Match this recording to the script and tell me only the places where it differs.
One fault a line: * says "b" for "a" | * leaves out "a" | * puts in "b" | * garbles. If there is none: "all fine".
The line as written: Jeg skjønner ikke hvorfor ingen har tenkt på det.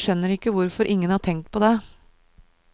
all fine